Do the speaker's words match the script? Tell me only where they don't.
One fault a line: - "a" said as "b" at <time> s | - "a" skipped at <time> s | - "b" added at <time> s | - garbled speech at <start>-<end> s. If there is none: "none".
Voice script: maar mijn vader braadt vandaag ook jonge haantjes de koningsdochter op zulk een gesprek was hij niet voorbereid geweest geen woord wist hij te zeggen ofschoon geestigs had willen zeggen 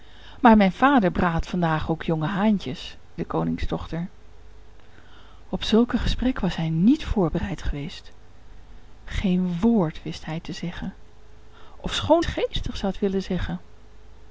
none